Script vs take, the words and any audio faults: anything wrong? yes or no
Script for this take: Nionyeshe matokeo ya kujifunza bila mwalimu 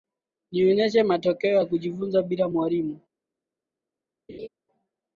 yes